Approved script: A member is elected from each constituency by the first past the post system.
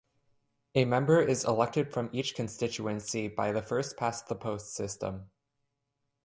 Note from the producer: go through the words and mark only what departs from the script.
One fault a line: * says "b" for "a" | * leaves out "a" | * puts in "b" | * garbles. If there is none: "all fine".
all fine